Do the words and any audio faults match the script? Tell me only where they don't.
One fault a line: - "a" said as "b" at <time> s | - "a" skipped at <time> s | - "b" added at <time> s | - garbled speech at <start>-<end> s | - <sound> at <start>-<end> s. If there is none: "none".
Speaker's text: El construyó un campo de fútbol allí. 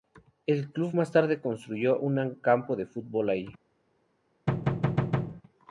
- "club más tarde" added at 0.7 s
- thud at 4.5-5.4 s